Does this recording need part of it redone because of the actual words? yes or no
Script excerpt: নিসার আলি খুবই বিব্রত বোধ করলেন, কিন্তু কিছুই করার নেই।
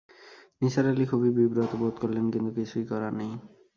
no